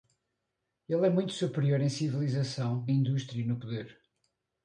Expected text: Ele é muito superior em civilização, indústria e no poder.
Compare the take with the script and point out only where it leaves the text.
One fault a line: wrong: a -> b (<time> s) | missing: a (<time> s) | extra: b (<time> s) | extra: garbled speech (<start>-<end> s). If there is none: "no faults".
no faults